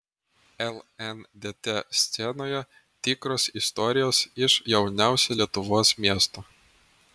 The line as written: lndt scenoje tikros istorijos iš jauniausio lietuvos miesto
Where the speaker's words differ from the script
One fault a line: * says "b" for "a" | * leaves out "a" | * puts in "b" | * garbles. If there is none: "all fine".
all fine